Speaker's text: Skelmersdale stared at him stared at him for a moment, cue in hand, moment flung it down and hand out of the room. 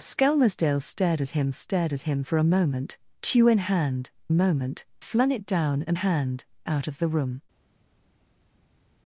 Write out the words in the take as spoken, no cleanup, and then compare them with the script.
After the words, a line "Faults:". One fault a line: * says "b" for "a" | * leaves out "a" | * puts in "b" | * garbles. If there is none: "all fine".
Skelmersdale stared at him stared at him for a moment, cue in hand, moment flung it down and hand out of the room.
Faults:
all fine